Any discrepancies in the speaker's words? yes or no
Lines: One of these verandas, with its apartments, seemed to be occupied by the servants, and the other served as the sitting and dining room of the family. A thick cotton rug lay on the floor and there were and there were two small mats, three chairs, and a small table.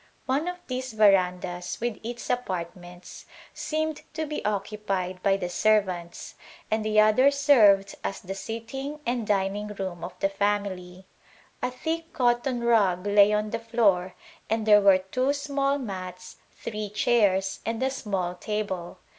yes